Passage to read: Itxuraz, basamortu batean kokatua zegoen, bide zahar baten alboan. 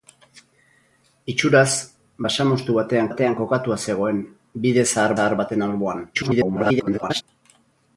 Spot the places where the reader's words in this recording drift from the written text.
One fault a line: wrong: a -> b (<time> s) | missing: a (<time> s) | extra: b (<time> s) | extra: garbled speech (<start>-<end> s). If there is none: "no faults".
extra: batean (3.1 s)
extra: zahar (5.2 s)
extra: garbled speech (6.1-7.2 s)